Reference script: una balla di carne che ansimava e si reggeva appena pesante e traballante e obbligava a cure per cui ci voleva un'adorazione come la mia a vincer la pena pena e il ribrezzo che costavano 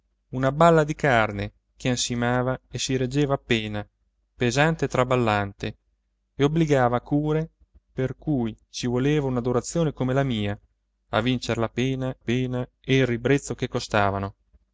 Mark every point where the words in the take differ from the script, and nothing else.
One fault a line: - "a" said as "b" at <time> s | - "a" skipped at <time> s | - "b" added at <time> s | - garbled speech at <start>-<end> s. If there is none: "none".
none